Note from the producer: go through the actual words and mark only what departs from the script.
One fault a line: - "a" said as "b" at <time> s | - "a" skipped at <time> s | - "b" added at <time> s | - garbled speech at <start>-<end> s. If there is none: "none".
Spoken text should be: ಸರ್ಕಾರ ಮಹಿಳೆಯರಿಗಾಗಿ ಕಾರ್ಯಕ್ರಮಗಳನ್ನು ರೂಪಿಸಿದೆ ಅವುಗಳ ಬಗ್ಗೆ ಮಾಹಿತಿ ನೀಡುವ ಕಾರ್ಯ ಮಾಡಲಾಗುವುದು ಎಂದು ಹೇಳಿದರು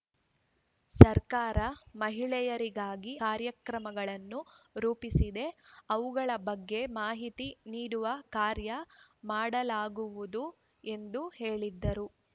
none